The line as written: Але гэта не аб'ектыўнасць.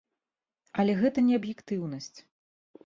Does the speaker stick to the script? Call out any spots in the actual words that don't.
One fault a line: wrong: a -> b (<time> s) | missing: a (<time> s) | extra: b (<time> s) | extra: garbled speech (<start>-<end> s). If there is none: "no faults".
no faults